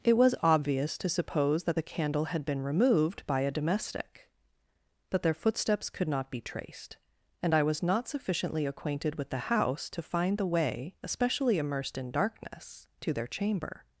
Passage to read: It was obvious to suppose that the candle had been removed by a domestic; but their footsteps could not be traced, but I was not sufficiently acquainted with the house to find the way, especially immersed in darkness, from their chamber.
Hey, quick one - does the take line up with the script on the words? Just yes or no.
no